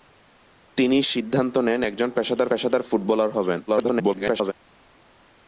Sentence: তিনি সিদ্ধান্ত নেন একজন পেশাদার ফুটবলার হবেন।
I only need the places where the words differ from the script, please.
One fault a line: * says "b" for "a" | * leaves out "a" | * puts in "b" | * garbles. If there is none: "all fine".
* puts in "পেশাদার"
* garbles